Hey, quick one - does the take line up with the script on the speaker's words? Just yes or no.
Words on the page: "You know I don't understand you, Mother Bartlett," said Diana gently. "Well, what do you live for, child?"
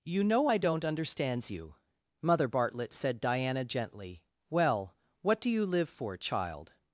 no